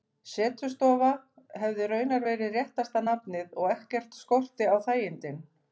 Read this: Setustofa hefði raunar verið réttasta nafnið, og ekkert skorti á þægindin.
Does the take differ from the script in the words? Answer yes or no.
no